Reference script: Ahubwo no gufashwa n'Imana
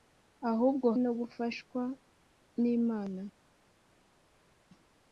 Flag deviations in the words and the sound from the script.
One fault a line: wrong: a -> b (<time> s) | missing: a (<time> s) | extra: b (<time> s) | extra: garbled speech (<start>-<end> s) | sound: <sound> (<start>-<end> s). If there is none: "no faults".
no faults